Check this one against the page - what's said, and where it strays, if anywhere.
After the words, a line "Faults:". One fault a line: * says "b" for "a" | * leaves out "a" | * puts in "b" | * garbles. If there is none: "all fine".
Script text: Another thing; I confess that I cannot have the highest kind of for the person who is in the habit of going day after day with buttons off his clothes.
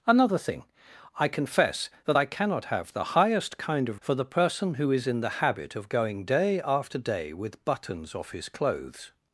Another thing; I confess that I cannot have the highest kind of for the person who is in the habit of going day after day with buttons off his clothes.
Faults:
all fine